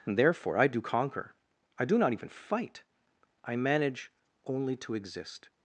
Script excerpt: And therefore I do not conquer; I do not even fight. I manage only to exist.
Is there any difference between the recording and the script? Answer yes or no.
yes